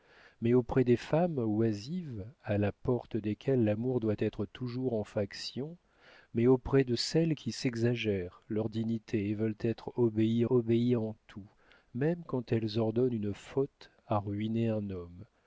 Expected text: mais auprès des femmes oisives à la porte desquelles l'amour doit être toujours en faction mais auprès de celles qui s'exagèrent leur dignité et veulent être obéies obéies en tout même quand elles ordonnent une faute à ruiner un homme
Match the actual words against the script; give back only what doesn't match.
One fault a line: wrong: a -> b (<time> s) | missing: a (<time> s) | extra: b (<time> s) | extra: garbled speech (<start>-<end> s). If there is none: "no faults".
no faults